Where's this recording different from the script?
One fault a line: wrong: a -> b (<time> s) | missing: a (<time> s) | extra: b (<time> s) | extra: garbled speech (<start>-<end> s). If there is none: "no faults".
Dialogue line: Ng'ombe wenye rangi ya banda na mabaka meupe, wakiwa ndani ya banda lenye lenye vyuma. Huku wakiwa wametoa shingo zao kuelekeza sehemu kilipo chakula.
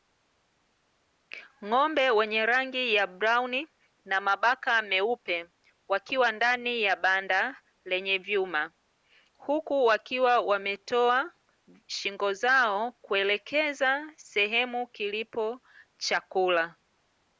wrong: banda -> brauni (3.1 s)
missing: lenye (8.2 s)